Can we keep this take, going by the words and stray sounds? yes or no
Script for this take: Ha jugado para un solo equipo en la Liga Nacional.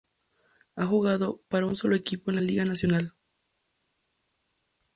yes